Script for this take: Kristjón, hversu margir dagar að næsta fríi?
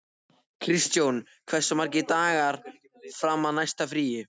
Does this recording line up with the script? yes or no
no